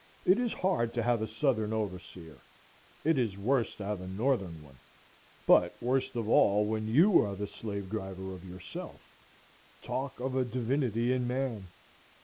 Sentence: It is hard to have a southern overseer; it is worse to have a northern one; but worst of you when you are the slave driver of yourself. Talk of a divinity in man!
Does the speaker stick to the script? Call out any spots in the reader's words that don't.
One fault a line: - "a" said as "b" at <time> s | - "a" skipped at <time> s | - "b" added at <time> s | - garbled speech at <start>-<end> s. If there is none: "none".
- "you" said as "all" at 6.3 s